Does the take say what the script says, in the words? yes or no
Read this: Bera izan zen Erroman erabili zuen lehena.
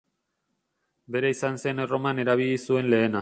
yes